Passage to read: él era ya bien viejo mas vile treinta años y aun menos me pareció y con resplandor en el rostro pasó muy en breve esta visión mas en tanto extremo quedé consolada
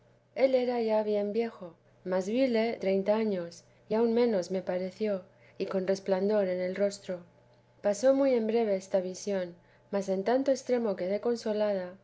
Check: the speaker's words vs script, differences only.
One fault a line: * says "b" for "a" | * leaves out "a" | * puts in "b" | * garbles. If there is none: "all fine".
all fine